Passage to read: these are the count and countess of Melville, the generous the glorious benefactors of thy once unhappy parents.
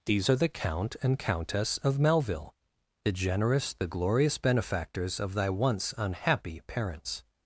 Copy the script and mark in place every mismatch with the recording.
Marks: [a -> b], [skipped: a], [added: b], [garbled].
these are the count and countess of Melville, the generous the glorious benefactors of thy once unhappy parents.